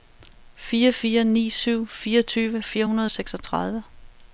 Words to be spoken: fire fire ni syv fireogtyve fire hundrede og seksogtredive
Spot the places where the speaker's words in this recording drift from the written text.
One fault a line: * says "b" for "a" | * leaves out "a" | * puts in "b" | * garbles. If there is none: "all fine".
all fine